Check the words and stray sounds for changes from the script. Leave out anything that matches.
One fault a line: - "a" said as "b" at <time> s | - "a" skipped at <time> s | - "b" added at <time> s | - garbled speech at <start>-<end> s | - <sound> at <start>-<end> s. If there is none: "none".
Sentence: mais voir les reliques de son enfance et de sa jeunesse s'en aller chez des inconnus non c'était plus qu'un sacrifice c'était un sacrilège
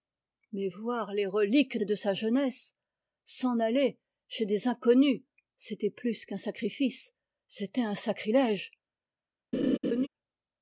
- "de son enfance" skipped at 1.8 s
- "non" skipped at 5.2 s
- laugh at 9.5-10.1 s